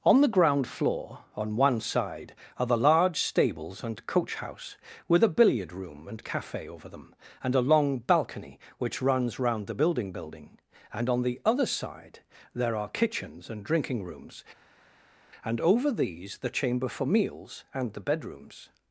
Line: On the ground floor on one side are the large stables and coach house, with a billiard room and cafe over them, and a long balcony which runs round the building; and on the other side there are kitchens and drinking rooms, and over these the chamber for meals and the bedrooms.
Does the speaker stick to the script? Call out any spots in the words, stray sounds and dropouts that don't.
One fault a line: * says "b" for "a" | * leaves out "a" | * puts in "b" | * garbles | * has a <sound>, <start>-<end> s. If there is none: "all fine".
* puts in "building"